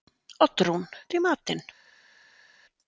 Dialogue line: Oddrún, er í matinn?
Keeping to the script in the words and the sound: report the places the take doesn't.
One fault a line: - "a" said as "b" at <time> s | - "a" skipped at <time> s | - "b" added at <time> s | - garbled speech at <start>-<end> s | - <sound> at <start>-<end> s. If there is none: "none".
none